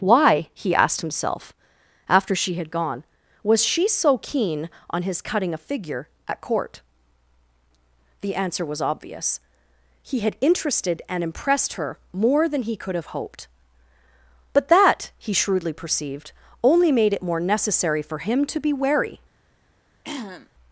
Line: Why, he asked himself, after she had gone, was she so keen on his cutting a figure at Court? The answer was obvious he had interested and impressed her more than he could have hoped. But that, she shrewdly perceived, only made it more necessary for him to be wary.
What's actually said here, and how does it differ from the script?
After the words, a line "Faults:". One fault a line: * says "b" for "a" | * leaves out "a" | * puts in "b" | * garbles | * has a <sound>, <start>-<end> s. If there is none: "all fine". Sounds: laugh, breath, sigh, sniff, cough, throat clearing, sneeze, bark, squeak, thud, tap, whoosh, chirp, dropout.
Why, he asked himself, after she had gone, was she so keen on his cutting a figure at Court? The answer was obvious he had interested and impressed her more than he could have hoped. But that, he shrewdly perceived, only made it more necessary for him to be wary.
Faults:
* says "he" for "she"
* has a throat clearing, 20.0-20.5 s